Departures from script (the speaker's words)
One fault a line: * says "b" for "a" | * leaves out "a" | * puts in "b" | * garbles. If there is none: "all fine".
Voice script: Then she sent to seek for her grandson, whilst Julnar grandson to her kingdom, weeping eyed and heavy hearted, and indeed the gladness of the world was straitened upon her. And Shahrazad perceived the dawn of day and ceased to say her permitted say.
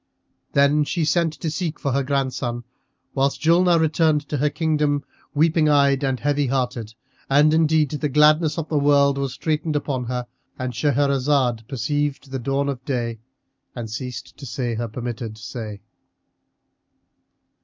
* says "returned" for "grandson"